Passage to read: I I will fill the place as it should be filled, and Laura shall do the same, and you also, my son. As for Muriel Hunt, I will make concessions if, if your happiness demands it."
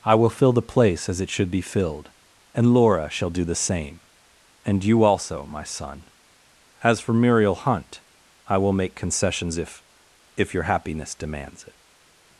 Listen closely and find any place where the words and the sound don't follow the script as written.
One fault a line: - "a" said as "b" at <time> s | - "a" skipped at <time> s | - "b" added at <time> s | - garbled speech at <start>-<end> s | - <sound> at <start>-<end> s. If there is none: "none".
- "I" skipped at 0.1 s